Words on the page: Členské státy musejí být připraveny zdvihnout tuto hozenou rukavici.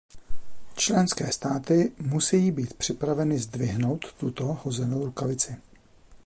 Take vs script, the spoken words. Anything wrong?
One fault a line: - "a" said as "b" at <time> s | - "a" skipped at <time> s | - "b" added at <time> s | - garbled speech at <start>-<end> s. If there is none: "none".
none